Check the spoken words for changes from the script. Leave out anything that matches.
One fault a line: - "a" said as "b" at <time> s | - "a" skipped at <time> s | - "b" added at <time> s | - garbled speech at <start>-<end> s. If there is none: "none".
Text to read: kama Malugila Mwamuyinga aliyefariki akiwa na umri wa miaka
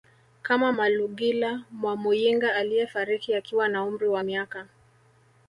none